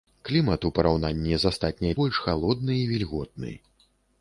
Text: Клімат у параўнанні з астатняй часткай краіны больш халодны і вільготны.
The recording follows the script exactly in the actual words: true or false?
false